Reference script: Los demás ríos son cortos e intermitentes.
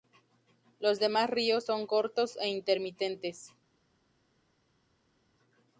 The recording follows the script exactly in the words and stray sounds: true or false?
true